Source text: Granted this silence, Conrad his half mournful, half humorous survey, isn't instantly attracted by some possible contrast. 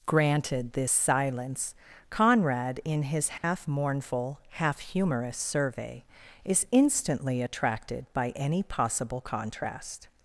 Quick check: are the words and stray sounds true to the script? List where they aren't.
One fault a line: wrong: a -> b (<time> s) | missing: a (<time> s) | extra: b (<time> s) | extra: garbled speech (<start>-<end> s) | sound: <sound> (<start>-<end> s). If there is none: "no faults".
extra: in (2.8 s)
sound: dropout (3.4-3.4 s)
wrong: isn't -> is (6.4 s)
wrong: some -> any (8.4 s)